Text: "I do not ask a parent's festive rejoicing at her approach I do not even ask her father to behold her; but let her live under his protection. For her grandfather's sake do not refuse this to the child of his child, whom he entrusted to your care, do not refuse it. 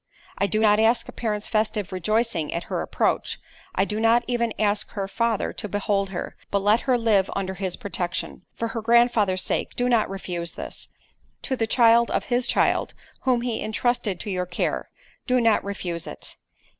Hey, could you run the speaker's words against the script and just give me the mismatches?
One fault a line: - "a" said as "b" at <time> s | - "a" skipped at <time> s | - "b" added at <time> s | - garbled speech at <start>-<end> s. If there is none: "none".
none